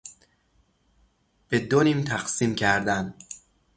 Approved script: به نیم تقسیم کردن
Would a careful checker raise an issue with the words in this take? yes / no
yes